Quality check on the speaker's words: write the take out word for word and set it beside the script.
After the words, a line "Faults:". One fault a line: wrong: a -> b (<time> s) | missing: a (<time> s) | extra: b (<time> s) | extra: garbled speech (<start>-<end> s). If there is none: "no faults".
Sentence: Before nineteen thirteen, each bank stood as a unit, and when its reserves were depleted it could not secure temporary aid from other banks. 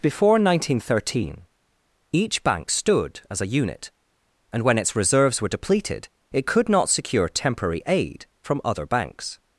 Before nineteen thirteen, each bank stood as a unit, and when its reserves were depleted it could not secure temporary aid from other banks.
Faults:
no faults